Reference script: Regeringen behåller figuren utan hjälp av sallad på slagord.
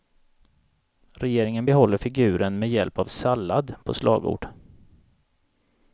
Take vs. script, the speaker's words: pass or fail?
fail